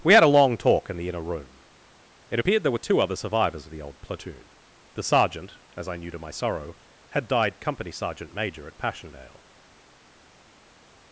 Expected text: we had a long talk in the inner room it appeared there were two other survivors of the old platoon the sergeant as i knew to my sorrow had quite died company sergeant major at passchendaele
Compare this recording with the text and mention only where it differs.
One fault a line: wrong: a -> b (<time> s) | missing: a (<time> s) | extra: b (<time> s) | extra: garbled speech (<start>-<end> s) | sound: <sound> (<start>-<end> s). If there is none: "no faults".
missing: quite (7.3 s)